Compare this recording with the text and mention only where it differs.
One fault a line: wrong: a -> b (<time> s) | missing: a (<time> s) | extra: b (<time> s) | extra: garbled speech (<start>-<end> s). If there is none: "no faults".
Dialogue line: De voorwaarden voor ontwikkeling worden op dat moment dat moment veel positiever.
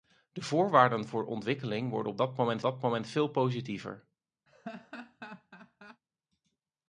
no faults